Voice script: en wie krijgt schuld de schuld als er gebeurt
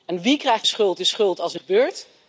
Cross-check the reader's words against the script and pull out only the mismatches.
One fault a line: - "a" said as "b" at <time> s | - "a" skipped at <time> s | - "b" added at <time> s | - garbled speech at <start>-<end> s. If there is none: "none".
none